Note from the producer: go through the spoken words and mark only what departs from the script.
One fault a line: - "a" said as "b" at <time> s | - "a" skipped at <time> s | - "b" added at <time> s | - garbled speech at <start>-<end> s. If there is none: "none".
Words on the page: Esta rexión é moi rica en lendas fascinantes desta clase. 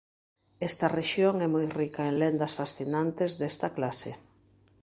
none